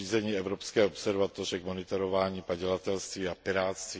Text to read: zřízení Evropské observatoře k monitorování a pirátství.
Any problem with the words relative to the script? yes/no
yes